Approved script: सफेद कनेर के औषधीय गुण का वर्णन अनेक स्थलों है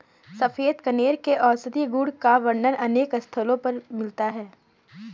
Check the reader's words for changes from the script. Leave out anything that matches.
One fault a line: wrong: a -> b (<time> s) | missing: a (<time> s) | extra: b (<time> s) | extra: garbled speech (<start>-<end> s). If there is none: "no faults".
extra: पर मिलता (3.6 s)